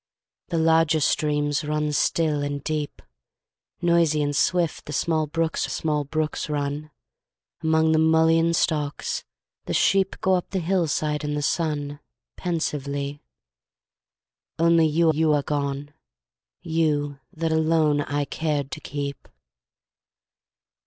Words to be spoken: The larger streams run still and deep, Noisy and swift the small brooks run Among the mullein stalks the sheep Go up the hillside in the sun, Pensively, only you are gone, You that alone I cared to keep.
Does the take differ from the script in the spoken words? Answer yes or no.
yes